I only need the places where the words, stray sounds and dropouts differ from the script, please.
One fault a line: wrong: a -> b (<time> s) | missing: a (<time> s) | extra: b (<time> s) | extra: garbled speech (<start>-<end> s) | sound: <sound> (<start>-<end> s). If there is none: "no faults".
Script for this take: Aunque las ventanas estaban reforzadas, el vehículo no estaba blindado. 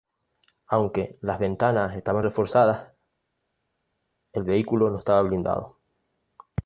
no faults